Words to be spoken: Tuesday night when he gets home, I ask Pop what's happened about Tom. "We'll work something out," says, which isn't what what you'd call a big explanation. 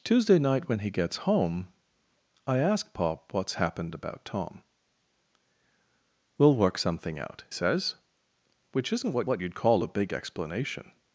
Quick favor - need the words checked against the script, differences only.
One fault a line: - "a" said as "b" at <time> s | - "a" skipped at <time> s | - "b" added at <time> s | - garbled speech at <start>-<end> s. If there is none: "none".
none